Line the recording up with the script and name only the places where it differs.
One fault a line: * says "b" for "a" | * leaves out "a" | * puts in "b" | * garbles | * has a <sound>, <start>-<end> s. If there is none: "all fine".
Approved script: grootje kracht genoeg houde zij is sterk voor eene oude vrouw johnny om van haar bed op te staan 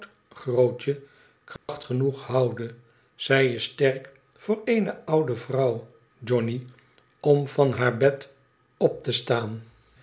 * has a dropout, 1.6-1.7 s